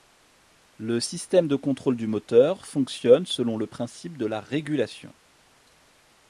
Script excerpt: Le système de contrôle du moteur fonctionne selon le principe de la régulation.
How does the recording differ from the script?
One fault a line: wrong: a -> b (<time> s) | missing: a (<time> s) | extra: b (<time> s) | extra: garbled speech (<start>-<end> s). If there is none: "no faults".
no faults